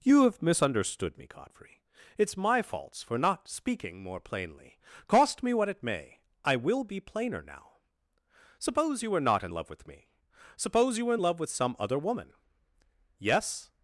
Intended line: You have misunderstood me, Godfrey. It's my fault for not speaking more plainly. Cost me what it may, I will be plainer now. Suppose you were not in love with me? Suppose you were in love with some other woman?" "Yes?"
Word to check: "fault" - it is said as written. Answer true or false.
false